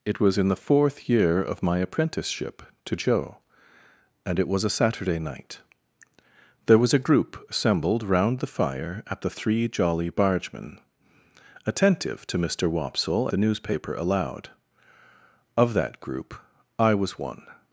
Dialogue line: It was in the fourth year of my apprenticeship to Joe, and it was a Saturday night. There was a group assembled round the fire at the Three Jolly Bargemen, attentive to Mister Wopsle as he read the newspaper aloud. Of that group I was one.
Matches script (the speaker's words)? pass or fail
fail